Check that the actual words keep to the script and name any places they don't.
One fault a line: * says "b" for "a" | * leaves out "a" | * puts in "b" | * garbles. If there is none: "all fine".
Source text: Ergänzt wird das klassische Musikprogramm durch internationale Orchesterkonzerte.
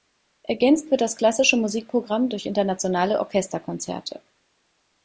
all fine